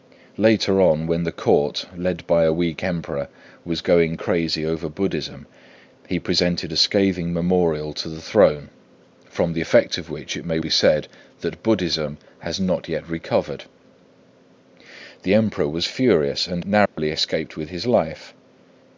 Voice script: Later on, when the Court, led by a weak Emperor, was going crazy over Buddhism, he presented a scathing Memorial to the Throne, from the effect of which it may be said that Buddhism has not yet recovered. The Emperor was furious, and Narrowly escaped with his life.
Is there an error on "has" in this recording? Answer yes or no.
no